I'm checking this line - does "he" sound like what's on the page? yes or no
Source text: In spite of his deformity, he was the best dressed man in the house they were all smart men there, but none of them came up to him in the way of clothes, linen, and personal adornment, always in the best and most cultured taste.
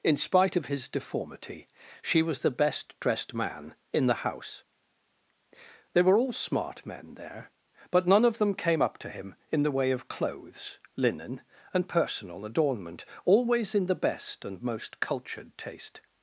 no